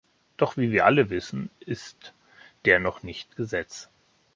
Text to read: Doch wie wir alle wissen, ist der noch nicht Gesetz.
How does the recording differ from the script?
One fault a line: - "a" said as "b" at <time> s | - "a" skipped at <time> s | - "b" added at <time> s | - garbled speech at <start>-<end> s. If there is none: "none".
none